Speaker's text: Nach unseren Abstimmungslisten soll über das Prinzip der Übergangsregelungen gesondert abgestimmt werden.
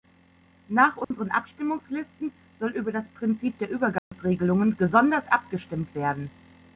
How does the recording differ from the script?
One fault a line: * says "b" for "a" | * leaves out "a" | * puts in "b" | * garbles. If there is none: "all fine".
all fine